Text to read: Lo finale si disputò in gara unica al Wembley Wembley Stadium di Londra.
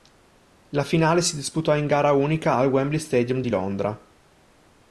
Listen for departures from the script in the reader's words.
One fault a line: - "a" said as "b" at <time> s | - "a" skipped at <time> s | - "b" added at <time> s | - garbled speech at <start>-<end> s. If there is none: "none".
- "Lo" said as "La" at 0.7 s
- "Wembley" skipped at 3.0 s